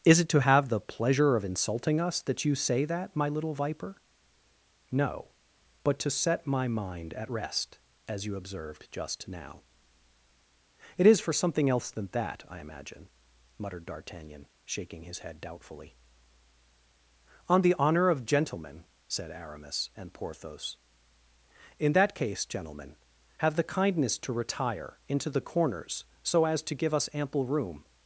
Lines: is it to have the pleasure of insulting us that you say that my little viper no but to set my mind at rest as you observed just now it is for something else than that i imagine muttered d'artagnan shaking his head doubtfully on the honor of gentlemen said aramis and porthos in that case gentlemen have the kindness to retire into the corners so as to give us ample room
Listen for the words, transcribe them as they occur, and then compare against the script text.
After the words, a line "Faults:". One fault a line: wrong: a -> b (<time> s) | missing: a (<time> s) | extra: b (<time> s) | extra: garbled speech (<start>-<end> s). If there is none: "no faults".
is it to have the pleasure of insulting us that you say that my little viper no but to set my mind at rest as you observed just now it is for something else than that i imagine muttered d'artagnan shaking his head doubtfully on the honor of gentlemen said aramis and porthos in that case gentlemen have the kindness to retire into the corners so as to give us ample room
Faults:
no faults